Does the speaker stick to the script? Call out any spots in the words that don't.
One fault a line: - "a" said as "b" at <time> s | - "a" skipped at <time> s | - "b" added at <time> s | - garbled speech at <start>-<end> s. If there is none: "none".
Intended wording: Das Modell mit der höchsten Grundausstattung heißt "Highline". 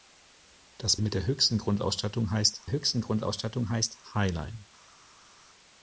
- "Modell" skipped at 1.0 s
- "höchsten Grundausstattung heißt" added at 2.7 s